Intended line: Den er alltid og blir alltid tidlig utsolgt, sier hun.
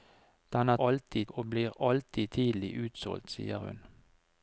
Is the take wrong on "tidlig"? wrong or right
right